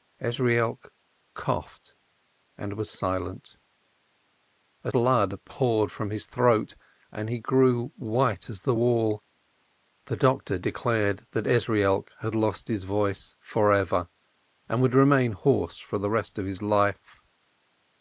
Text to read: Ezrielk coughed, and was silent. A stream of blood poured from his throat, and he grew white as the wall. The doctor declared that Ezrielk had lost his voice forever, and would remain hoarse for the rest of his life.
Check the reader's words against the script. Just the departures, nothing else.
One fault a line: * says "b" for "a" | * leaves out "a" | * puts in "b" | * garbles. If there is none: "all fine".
* leaves out "stream of"